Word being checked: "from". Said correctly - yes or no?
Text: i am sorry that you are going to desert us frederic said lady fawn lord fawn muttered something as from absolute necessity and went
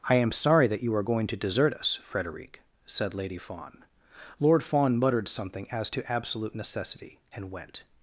no